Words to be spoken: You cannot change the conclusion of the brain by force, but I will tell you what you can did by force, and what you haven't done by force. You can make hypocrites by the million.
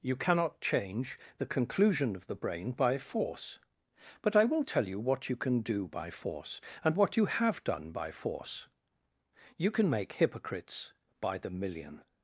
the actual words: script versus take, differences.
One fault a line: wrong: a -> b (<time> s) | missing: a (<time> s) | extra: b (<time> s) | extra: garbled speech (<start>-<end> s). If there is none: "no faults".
wrong: did -> do (5.6 s)
wrong: haven't -> have (7.3 s)